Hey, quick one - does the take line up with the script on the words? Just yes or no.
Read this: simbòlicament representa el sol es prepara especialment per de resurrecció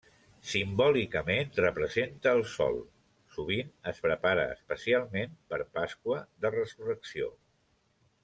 no